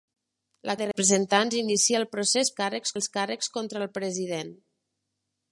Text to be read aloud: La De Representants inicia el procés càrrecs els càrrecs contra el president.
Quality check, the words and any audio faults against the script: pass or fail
pass